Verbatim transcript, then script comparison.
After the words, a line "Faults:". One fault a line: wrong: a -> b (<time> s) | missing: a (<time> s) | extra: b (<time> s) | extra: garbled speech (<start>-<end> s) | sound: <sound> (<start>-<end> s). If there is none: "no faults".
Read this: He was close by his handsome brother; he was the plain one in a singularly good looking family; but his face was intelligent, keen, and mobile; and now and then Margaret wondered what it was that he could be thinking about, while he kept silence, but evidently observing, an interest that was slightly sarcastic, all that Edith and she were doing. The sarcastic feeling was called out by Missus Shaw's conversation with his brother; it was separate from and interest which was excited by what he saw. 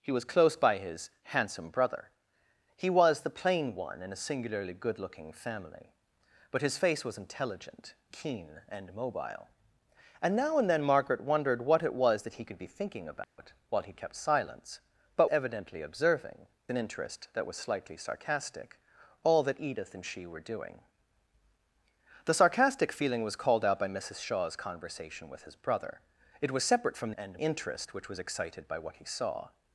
He was close by his handsome brother; he was the plain one in a singularly good looking family; but his face was intelligent, keen, and mobile; and now and then Margaret wondered what it was that he could be thinking about, while he kept silence, but evidently observing, an interest that was slightly sarcastic, all that Edith and she were doing. The sarcastic feeling was called out by Missus Shaw's conversation with his brother; it was separate from and interest which was excited by what he saw.
Faults:
sound: dropout (13.2-13.4 s)